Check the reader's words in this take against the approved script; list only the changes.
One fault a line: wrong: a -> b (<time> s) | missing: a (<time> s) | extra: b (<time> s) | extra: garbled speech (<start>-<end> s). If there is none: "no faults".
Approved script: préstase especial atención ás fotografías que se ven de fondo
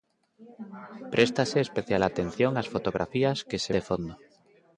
missing: ven (3.7 s)